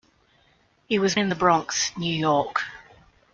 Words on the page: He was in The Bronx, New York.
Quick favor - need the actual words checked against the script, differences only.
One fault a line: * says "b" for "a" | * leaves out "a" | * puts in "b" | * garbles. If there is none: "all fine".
all fine